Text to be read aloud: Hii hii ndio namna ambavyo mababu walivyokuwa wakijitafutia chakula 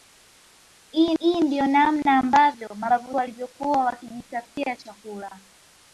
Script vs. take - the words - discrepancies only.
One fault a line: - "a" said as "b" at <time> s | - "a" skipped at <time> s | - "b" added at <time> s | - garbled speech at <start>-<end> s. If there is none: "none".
none